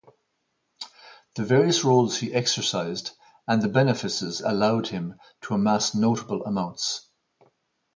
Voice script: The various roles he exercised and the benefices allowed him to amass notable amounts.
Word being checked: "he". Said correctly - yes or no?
yes